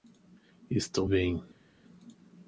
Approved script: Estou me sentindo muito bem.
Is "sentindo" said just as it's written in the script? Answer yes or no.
no